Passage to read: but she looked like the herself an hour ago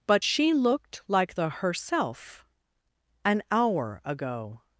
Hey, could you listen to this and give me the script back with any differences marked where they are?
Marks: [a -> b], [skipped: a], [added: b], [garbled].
but she looked like the herself an hour ago